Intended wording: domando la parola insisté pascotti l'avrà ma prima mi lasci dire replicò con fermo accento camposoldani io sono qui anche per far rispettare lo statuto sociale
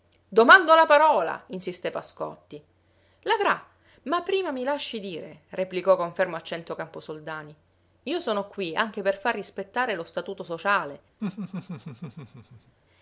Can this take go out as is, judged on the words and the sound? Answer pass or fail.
fail